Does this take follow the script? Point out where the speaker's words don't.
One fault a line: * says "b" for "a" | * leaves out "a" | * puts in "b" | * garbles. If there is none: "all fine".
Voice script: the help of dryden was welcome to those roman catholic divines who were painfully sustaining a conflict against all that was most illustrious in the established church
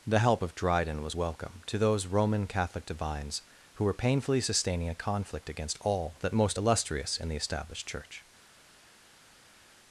* leaves out "was"